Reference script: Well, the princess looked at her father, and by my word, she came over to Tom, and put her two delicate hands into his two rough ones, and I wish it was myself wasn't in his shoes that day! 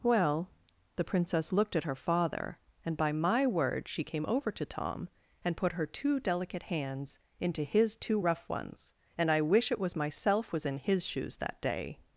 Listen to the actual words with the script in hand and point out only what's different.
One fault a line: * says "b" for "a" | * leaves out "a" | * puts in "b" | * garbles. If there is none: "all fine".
* says "was" for "wasn't"